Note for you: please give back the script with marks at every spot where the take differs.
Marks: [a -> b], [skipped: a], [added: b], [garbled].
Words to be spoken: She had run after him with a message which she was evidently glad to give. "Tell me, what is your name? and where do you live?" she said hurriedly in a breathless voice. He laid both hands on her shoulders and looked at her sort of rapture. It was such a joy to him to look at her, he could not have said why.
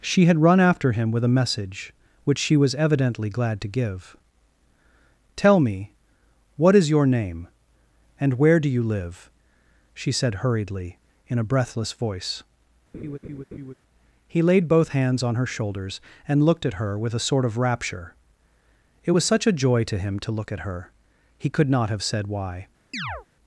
She had run after him with a message which she was evidently glad to give. "Tell me, what is your name? and where do you live?" she said hurriedly in a breathless voice. He laid both hands on her shoulders and looked at her [added: with a] sort of rapture. It was such a joy to him to look at her, he could not have said why.